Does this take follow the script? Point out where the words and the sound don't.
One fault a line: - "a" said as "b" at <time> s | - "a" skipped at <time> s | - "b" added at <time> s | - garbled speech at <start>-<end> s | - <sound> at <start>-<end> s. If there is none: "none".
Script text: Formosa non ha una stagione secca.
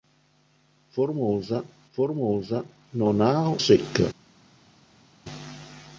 - "formosa" added at 1.9 s
- "una stagione" skipped at 3.5 s